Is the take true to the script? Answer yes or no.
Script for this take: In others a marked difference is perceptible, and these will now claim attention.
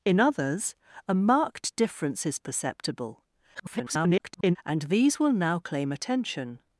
no